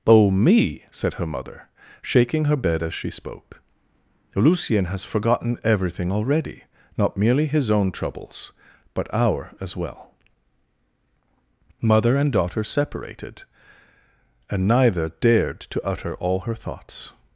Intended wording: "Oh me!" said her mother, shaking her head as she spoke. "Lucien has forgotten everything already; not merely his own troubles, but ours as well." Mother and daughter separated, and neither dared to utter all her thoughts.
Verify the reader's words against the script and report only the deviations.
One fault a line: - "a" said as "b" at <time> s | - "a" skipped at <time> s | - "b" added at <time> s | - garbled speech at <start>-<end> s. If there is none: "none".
- "head" said as "bed" at 2.5 s
- "ours" said as "our" at 9.1 s